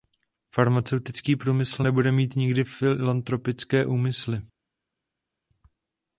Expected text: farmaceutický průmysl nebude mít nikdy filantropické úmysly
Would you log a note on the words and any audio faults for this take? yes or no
no